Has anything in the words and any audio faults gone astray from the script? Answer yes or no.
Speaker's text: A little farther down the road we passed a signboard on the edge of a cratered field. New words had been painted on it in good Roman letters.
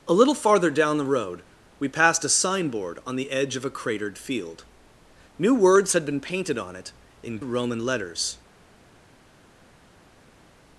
yes